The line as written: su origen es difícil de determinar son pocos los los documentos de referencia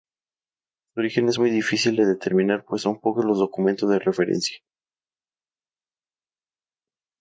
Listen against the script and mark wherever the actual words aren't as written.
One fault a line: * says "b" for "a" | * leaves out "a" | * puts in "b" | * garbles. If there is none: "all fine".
* puts in "muy"
* puts in "pues"
* leaves out "los"